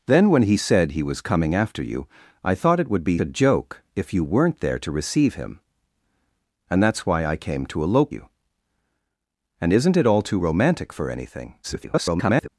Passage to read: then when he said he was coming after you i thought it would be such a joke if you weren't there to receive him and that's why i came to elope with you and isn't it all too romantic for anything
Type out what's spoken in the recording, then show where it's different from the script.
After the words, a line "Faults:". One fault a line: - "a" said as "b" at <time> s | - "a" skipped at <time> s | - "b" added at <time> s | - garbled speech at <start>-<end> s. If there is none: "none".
then when he said he was coming after you i thought it would be a joke if you weren't there to receive him and that's why i came to elope you and isn't it all too romantic for anything [garbled]
Faults:
- "such" skipped at 3.2 s
- "with" skipped at 8.1 s
- garbled speech at 11.6-12.5 s